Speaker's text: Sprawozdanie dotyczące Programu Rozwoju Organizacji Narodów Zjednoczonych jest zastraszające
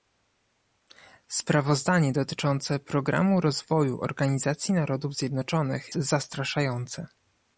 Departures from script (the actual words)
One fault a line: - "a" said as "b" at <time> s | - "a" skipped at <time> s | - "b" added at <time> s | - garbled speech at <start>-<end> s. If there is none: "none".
- "jest" skipped at 5.9 s